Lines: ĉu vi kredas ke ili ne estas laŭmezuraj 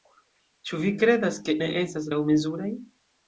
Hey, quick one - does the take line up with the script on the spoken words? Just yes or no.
no